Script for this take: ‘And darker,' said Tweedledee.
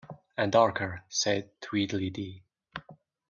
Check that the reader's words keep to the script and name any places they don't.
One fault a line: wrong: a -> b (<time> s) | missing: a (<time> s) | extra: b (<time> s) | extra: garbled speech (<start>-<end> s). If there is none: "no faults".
no faults